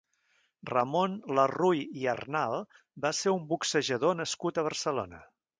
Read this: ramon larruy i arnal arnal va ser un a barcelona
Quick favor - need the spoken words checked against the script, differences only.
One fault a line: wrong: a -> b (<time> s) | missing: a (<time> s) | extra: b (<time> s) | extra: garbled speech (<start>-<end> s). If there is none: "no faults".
missing: arnal (2.6 s)
extra: boxejador nascut (3.5 s)